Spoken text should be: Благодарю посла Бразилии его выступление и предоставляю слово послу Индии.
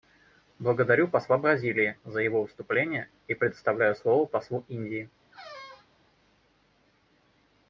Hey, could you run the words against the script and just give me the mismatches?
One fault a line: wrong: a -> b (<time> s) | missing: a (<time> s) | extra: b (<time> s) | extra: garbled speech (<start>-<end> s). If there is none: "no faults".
extra: за (2.0 s)